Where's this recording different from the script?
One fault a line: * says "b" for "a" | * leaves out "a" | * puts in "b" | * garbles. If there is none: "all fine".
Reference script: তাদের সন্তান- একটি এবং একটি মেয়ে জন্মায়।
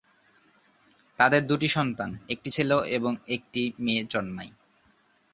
* puts in "দুটি"
* puts in "ছেলে"